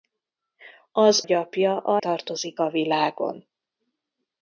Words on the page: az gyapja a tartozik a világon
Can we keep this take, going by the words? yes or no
yes